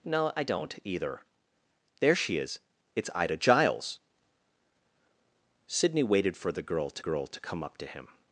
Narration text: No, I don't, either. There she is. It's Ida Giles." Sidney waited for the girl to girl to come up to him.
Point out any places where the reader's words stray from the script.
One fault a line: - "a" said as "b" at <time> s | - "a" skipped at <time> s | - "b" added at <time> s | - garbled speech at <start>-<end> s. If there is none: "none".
none